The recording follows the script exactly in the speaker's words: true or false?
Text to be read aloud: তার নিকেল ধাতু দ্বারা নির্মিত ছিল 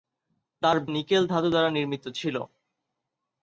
true